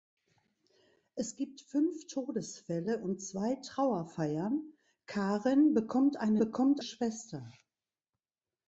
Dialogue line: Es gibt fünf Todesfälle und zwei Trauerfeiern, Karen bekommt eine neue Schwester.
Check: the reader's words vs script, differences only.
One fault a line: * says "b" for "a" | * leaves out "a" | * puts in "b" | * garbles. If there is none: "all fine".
* says "bekommt" for "neue"